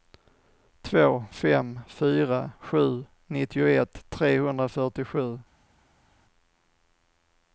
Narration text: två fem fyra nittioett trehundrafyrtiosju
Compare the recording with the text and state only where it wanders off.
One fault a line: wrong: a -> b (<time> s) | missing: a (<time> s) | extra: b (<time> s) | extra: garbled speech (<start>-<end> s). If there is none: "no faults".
extra: sju (2.6 s)